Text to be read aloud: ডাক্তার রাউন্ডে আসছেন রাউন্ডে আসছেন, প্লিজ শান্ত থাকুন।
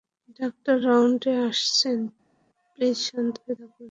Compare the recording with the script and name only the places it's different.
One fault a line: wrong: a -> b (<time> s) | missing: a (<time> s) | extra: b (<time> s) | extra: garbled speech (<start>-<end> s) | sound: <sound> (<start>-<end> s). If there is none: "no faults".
missing: রাউন্ডে আসছেন (2.0 s)
extra: হয়ে (3.4 s)